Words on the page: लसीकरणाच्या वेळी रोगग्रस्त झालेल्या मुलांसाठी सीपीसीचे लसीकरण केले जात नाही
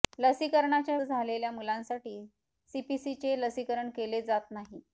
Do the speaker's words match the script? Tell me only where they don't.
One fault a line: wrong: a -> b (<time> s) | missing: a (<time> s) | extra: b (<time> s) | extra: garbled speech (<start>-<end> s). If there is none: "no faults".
missing: वेळी रोगग्रस्त (1.0 s)